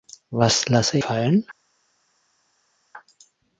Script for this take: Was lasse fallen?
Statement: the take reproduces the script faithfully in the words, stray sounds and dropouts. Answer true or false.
true